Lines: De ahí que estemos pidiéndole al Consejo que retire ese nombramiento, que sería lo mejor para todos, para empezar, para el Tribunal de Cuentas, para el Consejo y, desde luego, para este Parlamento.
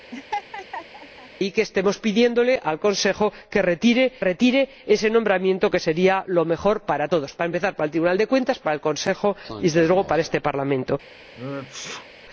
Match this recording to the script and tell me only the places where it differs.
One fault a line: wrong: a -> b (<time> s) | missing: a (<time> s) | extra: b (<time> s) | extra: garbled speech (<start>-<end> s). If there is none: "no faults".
extra: retire (4.2 s)